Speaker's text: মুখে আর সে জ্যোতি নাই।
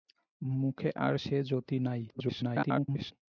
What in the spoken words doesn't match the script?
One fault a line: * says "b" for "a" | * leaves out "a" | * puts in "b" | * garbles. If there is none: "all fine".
* garbles